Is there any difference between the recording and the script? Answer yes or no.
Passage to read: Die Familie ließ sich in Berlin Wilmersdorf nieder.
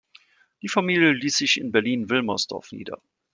no